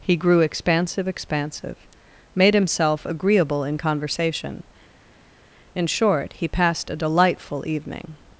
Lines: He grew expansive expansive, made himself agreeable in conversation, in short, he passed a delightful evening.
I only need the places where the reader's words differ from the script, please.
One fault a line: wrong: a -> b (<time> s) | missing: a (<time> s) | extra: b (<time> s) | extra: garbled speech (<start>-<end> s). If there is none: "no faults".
no faults